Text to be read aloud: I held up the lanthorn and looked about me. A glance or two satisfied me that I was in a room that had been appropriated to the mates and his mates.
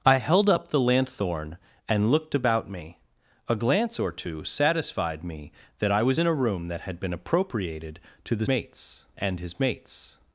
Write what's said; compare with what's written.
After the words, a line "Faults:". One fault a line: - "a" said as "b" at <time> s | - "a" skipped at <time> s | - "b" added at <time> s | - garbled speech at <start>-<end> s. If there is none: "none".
I held up the lanthorn and looked about me. A glance or two satisfied me that I was in a room that had been appropriated to the mates and his mates.
Faults:
none